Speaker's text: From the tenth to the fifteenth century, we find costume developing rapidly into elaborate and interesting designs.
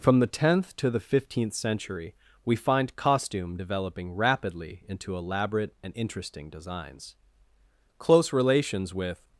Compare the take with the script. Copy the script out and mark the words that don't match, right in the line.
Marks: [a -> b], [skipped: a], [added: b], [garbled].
From the tenth to the fifteenth century, we find costume developing rapidly into elaborate and interesting designs. [added: Close relations with]